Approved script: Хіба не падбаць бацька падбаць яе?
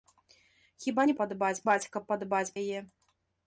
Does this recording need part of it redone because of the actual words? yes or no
no